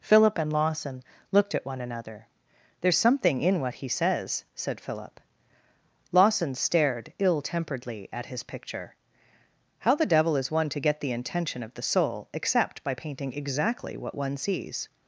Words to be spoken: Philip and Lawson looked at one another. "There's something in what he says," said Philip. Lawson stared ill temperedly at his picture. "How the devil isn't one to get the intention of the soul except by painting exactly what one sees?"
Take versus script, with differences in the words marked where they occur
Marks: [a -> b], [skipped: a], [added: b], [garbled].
Philip and Lawson looked at one another. "There's something in what he says," said Philip. Lawson stared ill temperedly at his picture. "How the devil [isn't -> is] one to get the intention of the soul except by painting exactly what one sees?"